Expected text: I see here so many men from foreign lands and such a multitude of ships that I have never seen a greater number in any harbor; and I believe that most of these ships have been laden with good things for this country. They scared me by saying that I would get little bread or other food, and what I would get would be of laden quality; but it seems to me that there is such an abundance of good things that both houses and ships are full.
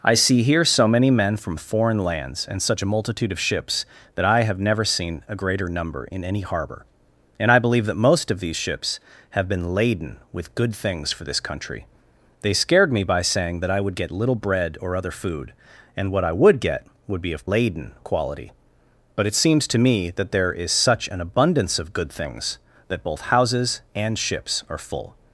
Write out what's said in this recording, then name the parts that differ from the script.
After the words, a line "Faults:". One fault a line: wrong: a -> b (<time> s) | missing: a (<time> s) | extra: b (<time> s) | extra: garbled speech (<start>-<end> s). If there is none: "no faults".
I see here so many men from foreign lands and such a multitude of ships that I have never seen a greater number in any harbor; and I believe that most of these ships have been laden with good things for this country. They scared me by saying that I would get little bread or other food, and what I would get would be of laden quality; but it seems to me that there is such an abundance of good things that both houses and ships are full.
Faults:
no faults